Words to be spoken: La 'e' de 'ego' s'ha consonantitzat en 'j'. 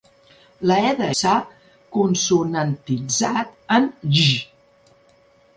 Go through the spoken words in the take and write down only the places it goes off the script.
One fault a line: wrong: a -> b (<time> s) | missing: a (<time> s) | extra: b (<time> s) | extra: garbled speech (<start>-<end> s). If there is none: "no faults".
missing: ego (1.1 s)